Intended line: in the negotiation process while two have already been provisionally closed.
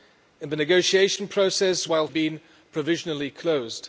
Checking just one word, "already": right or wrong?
wrong